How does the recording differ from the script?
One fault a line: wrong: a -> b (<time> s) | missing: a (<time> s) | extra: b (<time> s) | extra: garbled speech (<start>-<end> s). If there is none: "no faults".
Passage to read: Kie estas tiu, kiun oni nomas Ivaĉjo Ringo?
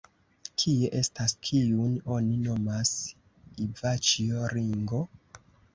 missing: tiu (1.4 s)